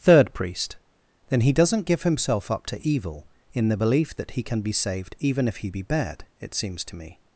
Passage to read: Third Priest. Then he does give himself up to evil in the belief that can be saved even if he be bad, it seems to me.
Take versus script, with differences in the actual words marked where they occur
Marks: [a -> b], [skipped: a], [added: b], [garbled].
Third Priest. Then he [does -> doesn't] give himself up to evil in the belief that [added: he] can be saved even if he be bad, it seems to me.